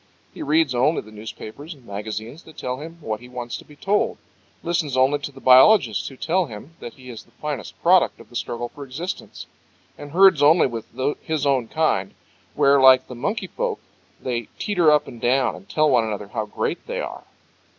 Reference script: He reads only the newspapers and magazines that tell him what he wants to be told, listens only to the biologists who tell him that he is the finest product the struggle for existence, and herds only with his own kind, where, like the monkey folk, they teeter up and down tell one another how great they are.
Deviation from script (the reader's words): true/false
true